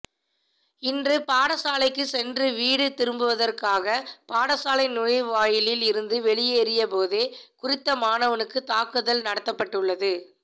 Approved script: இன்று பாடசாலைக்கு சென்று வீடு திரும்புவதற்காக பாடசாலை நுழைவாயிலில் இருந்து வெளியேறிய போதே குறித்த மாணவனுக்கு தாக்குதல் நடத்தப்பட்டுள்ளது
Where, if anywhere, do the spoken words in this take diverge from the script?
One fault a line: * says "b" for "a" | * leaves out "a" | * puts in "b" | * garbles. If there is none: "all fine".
all fine